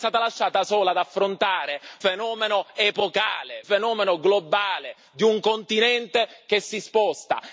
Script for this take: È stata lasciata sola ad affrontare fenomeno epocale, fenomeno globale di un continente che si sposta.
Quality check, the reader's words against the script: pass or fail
pass